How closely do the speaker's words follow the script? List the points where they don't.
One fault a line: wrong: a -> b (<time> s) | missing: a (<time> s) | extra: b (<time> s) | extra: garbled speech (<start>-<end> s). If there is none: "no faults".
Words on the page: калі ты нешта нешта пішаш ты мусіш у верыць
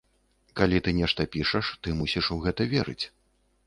missing: нешта (1.3 s)
extra: гэта (2.5 s)